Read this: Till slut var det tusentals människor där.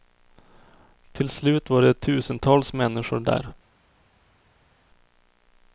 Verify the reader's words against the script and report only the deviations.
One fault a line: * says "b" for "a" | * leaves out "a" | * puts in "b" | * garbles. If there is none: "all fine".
all fine